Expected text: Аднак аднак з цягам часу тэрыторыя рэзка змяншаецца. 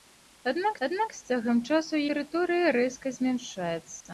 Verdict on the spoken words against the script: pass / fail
pass